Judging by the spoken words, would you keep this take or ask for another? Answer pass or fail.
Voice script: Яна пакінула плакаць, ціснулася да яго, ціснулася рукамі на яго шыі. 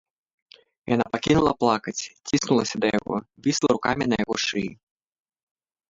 fail